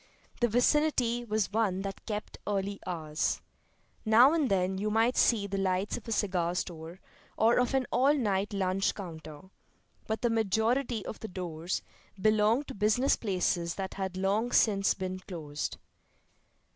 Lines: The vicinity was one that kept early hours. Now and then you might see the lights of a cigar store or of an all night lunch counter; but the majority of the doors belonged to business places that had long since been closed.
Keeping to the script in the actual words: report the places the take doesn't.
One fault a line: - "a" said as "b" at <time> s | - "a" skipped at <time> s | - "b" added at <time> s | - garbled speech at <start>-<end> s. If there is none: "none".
none